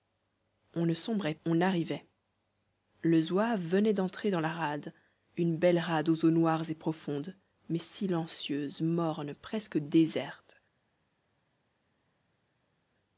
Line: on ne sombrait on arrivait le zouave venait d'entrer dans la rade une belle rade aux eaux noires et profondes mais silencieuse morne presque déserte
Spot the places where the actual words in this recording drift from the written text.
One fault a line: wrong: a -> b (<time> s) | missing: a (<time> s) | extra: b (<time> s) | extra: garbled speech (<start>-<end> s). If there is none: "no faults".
no faults